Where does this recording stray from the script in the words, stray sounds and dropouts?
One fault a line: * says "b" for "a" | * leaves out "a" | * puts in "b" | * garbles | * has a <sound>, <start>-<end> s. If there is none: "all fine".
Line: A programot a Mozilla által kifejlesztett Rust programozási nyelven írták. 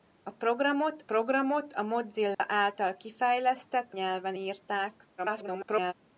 * puts in "programot"
* has a dropout, 2.3-2.4 s
* leaves out "Rust programozási"
* garbles